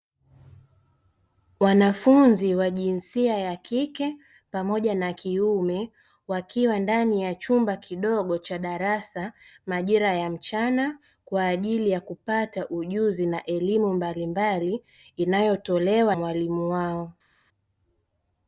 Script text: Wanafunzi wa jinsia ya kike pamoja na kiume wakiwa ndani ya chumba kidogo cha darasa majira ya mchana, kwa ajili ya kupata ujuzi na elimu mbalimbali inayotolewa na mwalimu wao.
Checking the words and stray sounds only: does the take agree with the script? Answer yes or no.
no